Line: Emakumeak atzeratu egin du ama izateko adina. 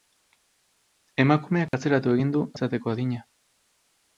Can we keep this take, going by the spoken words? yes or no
no